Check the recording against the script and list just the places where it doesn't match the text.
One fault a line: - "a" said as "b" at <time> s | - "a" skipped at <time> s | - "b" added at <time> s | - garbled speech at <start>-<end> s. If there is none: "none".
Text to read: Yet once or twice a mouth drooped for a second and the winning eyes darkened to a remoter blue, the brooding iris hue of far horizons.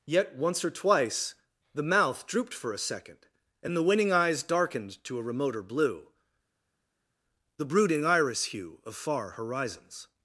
- "a" said as "the" at 1.7 s